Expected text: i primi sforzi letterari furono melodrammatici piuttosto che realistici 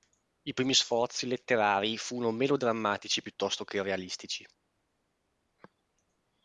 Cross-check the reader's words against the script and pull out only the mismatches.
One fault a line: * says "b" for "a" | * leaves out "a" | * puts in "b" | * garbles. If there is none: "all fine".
all fine